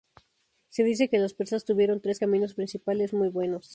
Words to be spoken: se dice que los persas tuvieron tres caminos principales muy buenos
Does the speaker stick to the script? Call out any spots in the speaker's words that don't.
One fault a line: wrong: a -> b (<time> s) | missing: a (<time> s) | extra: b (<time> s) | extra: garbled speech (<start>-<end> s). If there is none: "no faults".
no faults